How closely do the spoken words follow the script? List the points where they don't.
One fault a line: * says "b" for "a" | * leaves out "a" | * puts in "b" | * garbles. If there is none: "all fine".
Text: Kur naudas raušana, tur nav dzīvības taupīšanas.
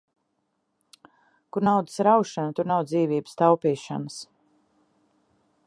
all fine